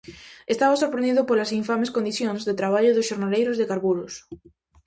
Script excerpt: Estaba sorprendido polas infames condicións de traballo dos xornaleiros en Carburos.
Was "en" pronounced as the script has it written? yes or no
no